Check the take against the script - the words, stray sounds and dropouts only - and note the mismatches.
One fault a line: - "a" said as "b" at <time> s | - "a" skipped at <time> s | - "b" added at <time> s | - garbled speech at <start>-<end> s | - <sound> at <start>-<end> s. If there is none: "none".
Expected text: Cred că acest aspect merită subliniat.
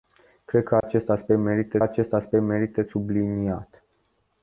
- dropout at 0.8-0.8 s
- "acest aspect merită" added at 1.8 s